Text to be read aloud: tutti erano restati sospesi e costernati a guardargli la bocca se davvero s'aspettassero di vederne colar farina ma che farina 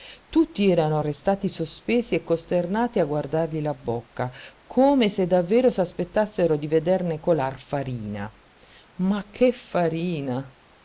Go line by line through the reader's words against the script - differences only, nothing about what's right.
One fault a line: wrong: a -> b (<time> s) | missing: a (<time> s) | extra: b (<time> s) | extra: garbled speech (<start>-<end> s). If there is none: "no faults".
extra: come (4.6 s)